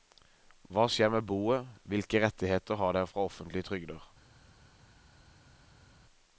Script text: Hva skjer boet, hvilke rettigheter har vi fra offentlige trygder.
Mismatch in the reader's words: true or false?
true